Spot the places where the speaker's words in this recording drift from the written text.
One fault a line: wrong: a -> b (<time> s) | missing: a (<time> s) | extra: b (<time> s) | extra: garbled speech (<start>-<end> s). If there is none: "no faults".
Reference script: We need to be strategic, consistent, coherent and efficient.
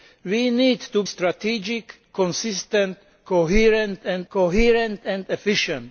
missing: be (1.0 s)
extra: coherent and (4.3 s)